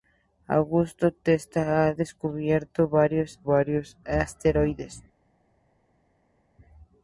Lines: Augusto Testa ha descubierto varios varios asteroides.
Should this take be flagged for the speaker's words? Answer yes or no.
no